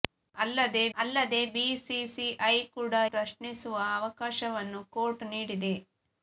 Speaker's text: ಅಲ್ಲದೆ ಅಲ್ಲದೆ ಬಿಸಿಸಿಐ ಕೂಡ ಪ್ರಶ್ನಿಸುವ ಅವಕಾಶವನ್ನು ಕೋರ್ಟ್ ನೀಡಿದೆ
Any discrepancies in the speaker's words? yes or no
no